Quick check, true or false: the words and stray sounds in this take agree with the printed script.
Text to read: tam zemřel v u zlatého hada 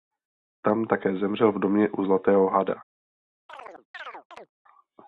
false